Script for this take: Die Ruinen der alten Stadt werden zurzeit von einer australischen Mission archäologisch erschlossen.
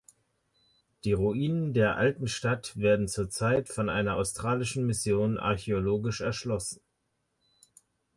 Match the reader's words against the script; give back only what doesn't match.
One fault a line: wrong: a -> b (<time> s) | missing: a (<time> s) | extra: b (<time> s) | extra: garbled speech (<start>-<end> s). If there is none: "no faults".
no faults